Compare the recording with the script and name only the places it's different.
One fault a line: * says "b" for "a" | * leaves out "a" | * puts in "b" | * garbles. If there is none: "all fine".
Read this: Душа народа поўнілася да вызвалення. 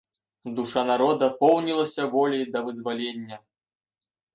* puts in "воляй"